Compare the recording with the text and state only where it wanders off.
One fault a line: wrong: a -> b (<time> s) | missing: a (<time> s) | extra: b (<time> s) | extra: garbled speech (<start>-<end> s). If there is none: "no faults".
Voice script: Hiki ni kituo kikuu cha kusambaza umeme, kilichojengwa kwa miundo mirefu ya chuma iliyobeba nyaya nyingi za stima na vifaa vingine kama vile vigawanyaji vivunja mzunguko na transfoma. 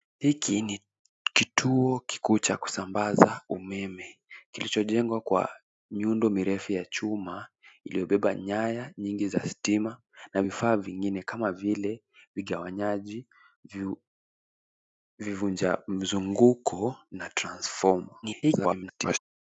extra: garbled speech (18.2-19.2 s)